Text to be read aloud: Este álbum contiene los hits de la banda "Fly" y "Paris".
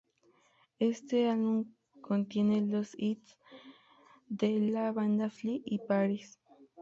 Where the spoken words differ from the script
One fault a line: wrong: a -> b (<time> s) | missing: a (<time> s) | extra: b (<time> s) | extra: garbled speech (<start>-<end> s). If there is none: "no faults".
no faults